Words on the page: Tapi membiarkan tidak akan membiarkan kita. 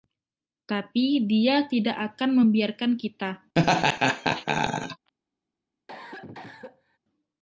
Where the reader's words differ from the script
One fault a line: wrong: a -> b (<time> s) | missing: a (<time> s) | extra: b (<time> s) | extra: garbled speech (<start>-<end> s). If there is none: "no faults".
wrong: membiarkan -> dia (1.3 s)